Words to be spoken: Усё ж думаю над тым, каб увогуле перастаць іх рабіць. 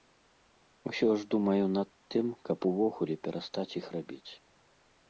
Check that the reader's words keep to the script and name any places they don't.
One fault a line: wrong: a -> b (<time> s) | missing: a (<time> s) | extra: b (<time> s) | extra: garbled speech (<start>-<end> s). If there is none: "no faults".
no faults